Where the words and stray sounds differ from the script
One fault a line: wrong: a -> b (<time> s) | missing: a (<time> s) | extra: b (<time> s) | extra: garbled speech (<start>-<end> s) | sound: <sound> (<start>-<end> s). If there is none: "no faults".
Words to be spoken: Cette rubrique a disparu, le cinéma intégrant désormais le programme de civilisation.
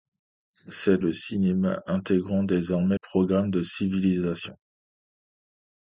missing: rubrique a disparu (1.1 s)
missing: le (3.0 s)